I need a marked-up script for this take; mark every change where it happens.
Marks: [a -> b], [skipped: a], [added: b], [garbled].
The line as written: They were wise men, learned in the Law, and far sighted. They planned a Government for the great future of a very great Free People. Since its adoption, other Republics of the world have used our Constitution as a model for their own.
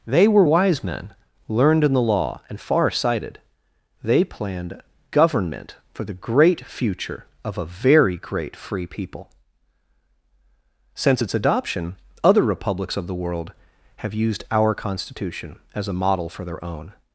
They were wise men, learned in the Law, and far sighted. They planned [skipped: a] Government for the great future of a very great Free People. Since its adoption, other Republics of the world have used our Constitution as a model for their own.